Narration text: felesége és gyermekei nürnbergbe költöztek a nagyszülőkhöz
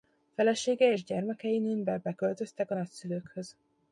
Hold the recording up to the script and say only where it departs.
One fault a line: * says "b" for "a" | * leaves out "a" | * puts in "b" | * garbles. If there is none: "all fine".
all fine